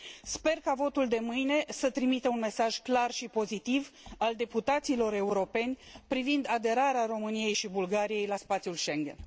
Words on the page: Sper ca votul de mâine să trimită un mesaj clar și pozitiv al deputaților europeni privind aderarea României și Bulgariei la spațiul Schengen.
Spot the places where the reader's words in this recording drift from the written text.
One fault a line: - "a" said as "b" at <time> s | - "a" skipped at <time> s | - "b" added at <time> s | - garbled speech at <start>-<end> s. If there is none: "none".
none